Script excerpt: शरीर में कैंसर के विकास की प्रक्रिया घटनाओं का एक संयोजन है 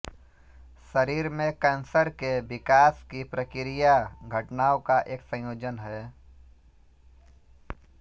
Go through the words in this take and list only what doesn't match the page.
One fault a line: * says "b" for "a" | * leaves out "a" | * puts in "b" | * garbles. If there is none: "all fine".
all fine